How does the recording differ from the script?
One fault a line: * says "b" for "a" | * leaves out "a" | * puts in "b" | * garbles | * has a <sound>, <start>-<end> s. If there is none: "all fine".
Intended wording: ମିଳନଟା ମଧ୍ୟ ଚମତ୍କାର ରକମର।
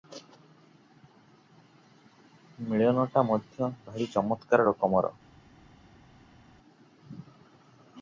* puts in "ଭାରି"